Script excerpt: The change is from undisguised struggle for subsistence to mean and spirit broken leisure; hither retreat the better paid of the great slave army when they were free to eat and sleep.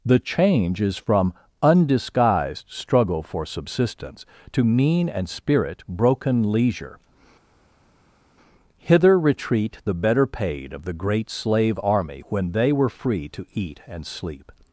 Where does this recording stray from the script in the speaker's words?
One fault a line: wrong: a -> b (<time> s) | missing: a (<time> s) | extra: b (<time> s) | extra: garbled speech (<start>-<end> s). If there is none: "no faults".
no faults